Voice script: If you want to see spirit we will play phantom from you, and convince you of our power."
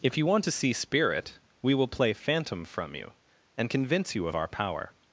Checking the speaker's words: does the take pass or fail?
pass